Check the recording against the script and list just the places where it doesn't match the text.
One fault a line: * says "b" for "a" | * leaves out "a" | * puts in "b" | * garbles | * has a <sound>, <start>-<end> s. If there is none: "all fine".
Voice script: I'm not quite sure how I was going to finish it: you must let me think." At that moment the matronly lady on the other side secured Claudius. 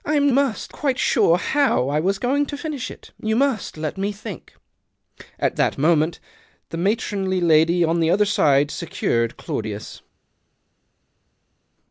* says "must" for "not"